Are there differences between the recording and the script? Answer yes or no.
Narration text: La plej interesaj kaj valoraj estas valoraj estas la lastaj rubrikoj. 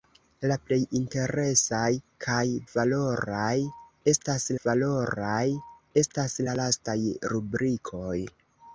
no